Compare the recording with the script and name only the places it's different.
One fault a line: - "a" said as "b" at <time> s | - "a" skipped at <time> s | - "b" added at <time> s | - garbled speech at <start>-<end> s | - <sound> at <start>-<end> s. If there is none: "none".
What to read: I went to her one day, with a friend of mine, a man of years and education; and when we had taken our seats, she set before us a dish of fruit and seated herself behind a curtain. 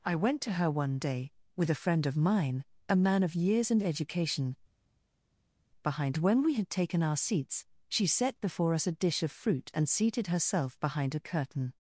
- "and" said as "behind" at 5.8 s